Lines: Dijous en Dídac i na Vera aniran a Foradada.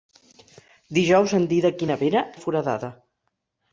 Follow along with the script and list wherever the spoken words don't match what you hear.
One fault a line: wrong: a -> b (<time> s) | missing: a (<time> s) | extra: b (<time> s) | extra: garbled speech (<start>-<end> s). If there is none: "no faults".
missing: aniran (2.2 s)